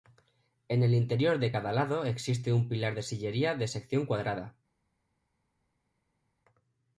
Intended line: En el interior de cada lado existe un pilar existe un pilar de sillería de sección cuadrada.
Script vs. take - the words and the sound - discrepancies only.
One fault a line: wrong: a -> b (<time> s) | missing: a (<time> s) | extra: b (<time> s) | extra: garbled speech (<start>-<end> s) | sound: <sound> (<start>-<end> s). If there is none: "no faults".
missing: existe un pilar (2.9 s)